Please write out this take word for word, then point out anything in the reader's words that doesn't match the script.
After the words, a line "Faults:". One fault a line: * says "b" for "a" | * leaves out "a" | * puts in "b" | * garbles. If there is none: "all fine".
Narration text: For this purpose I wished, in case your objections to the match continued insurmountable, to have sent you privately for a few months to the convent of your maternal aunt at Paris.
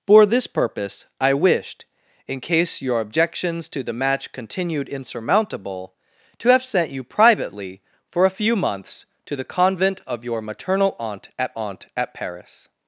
For this purpose I wished, in case your objections to the match continued insurmountable, to have sent you privately for a few months to the convent of your maternal aunt at aunt at Paris.
Faults:
* puts in "aunt at"